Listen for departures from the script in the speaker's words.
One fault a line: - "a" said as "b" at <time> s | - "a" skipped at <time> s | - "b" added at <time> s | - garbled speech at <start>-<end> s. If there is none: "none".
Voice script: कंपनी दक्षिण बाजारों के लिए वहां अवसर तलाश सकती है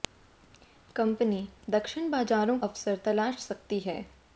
- "के लिए वहां" skipped at 2.6 s